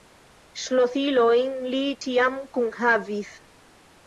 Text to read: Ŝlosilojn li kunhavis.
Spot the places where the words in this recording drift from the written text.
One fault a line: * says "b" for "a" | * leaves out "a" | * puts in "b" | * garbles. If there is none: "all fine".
* puts in "ĉiam"